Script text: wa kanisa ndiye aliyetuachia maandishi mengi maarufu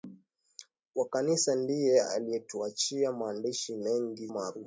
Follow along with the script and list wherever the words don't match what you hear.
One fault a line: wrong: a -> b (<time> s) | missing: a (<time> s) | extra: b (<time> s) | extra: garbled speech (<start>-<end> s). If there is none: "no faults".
no faults